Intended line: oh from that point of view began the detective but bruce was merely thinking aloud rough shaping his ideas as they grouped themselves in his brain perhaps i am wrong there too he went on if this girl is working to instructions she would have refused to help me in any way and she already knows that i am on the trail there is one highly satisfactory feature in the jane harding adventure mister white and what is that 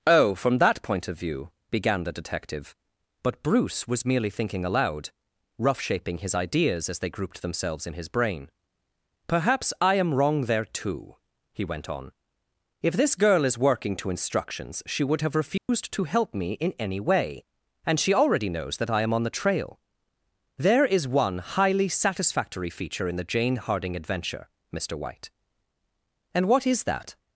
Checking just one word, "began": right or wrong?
right